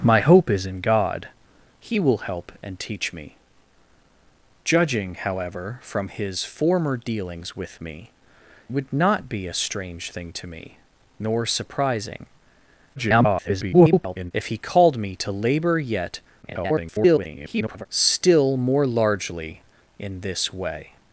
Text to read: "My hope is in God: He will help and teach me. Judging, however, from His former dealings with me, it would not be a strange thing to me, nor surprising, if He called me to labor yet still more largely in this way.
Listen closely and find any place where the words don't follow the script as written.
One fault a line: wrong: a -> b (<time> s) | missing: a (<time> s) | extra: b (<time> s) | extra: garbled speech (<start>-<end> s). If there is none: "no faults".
missing: it (8.1 s)
extra: garbled speech (13.0-14.3 s)
extra: garbled speech (16.4-17.9 s)